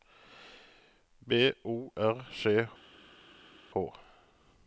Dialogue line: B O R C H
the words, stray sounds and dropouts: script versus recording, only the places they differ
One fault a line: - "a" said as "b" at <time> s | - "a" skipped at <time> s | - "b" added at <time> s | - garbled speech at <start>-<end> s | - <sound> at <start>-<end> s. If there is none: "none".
none